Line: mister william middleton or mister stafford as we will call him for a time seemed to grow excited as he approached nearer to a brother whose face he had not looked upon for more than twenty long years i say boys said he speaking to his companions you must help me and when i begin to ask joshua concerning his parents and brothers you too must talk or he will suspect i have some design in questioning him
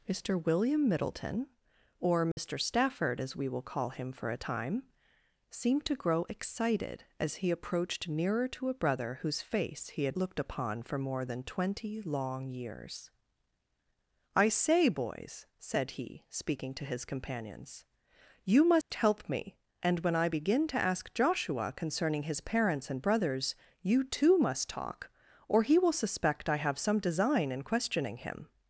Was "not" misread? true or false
true